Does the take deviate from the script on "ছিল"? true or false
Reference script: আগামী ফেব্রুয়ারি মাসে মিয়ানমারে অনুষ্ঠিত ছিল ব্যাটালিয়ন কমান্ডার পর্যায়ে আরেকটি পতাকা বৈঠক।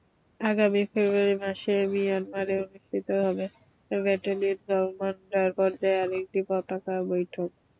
true